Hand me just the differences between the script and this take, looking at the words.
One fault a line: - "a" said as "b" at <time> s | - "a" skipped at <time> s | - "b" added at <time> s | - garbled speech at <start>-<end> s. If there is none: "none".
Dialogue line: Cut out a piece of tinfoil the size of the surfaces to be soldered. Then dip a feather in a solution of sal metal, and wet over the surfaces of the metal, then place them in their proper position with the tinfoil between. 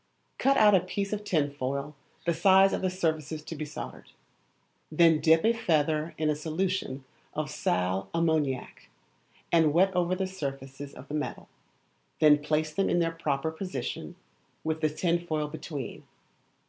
- "metal" said as "ammoniac" at 8.1 s